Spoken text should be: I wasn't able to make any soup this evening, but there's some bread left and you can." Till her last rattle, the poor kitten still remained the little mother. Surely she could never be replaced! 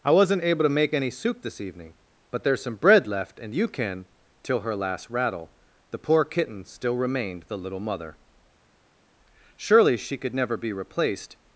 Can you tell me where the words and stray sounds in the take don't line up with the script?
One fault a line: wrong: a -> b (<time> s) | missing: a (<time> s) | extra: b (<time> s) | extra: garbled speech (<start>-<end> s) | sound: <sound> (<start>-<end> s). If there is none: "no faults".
no faults